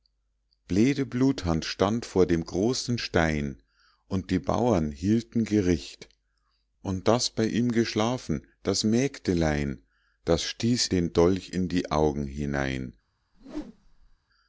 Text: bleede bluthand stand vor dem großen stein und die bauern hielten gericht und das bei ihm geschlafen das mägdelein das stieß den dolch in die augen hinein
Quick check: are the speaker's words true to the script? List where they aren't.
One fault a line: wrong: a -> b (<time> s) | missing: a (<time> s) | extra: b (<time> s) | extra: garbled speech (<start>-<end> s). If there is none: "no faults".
no faults